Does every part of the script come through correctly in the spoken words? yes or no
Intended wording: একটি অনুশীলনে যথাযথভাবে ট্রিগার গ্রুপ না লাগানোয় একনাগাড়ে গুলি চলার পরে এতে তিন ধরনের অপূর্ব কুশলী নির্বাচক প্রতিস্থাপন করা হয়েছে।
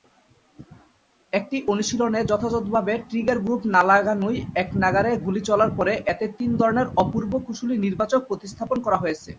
yes